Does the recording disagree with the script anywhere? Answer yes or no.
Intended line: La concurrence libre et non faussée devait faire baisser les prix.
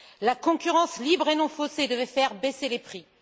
no